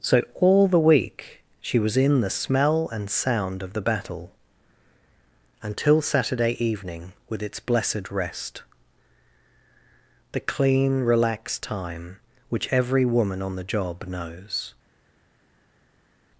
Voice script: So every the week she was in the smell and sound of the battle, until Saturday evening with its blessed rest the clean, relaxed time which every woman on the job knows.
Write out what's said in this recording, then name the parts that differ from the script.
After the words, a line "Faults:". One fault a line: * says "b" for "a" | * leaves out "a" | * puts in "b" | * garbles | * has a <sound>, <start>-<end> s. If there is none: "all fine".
So all the week she was in the smell and sound of the battle, until Saturday evening with its blessed rest the clean, relaxed time which every woman on the job knows.
Faults:
* says "all" for "every"